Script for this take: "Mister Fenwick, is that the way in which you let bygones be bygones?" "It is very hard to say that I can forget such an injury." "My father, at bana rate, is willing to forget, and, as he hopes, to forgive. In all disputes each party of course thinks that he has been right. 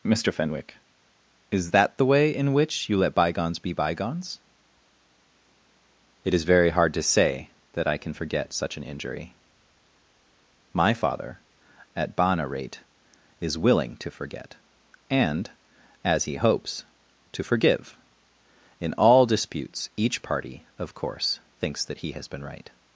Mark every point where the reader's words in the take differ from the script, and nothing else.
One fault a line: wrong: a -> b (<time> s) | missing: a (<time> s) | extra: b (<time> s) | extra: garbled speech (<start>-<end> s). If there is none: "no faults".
no faults